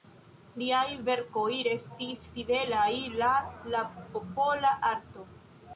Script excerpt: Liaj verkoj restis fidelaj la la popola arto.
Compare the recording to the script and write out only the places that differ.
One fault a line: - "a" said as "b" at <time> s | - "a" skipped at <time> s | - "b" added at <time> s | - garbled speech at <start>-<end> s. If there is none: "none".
none